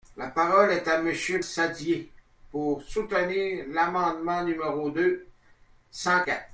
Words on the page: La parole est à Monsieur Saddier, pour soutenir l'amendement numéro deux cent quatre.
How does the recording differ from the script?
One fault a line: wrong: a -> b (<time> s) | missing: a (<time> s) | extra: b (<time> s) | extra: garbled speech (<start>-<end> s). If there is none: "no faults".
no faults